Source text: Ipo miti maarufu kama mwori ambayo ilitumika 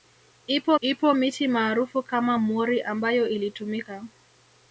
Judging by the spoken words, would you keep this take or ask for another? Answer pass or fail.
fail